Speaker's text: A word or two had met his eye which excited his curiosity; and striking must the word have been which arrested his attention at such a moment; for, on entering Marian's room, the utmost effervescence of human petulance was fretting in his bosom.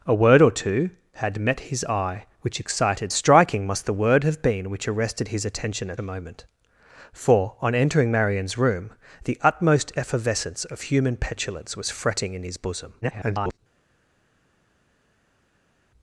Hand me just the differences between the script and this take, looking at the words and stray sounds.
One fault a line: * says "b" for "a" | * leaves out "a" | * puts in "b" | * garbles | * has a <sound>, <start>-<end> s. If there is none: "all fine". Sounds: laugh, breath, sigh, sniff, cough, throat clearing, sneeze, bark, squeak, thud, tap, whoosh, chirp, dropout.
* leaves out "his curiosity and"
* leaves out "such"
* garbles